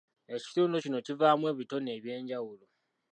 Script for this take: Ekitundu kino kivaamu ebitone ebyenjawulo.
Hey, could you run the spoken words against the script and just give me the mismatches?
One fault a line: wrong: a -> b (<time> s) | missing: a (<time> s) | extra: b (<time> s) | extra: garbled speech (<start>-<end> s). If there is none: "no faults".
no faults